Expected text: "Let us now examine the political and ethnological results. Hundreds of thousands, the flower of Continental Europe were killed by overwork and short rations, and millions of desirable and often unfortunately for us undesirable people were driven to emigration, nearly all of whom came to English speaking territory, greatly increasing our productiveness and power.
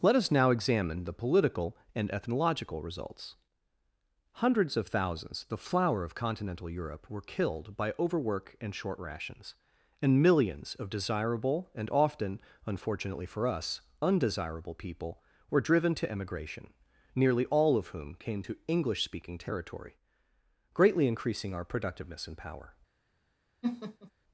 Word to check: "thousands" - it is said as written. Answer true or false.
true